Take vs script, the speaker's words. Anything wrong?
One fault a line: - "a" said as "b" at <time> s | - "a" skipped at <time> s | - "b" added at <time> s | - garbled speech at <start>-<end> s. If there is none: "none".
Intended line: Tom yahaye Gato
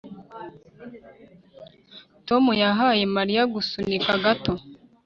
- "Mariya gusunika" added at 3.1 s